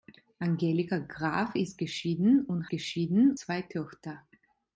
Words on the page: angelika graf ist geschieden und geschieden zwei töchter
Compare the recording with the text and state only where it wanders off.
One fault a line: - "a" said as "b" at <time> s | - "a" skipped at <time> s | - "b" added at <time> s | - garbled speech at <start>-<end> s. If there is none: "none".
none